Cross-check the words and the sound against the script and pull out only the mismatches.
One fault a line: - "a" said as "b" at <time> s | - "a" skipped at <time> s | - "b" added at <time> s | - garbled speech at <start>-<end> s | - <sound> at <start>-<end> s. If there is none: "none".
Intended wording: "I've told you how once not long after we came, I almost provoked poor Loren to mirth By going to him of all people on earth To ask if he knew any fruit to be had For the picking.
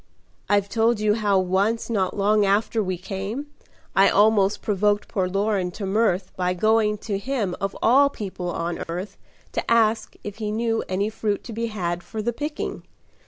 - dropout at 8.8-8.9 s